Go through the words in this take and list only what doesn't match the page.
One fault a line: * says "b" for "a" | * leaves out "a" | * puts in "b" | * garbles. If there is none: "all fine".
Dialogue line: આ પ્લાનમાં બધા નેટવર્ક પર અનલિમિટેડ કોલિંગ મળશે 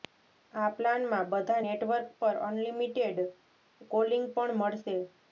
* puts in "પણ"